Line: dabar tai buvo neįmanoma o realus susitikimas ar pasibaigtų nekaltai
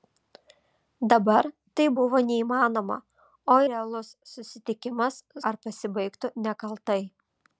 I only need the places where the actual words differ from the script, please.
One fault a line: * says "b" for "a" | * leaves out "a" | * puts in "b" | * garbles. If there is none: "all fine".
all fine